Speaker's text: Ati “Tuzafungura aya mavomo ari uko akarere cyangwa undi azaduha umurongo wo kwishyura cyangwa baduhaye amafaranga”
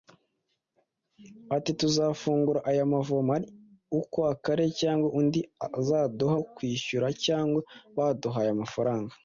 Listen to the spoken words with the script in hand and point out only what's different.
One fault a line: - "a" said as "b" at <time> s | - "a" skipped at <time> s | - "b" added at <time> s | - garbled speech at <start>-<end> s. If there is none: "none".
- "umurongo" skipped at 6.3 s